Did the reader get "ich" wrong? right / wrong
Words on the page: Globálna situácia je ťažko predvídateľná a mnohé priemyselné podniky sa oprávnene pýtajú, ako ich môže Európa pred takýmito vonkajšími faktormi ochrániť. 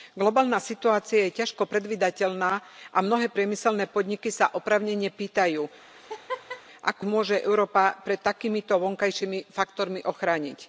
wrong